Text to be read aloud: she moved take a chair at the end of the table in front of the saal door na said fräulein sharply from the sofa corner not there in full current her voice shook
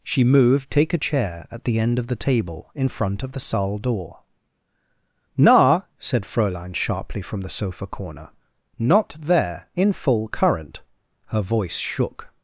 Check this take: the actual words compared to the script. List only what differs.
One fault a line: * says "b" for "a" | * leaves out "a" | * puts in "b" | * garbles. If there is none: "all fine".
all fine